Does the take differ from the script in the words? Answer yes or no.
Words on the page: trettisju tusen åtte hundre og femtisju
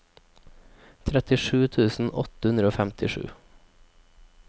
no